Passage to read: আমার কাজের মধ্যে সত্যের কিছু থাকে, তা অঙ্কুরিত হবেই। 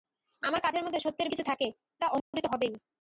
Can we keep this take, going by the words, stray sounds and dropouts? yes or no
no